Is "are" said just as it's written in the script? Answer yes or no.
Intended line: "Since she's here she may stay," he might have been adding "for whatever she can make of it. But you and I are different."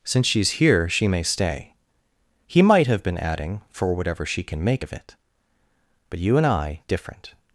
no